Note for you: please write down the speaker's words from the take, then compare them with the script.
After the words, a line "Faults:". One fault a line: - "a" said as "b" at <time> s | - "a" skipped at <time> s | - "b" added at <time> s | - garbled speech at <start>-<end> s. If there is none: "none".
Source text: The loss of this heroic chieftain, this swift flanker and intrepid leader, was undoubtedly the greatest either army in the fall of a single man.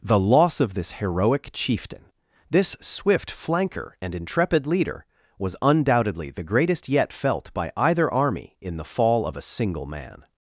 The loss of this heroic chieftain, this swift flanker and intrepid leader, was undoubtedly the greatest yet felt by either army in the fall of a single man.
Faults:
- "yet felt by" added at 6.9 s